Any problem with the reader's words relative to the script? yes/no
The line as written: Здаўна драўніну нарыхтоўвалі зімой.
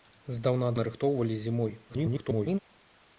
yes